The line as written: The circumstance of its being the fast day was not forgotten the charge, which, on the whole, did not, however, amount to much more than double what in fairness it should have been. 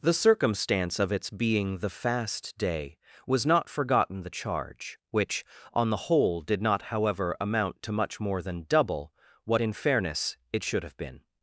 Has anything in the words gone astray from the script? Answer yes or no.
no